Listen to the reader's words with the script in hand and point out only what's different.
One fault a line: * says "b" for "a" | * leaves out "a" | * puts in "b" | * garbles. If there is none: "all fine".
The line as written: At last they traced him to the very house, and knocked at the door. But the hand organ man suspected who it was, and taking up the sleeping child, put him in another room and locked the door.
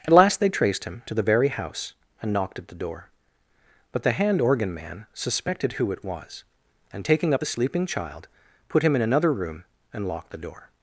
all fine